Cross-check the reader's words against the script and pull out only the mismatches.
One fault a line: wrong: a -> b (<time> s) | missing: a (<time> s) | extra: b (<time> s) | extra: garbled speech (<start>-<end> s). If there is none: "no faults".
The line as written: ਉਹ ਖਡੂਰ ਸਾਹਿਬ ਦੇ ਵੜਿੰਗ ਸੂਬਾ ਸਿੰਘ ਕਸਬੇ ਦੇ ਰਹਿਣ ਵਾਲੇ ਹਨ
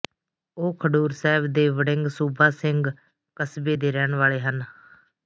no faults